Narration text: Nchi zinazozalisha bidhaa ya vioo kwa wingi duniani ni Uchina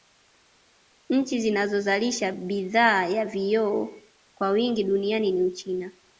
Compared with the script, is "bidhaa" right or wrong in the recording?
right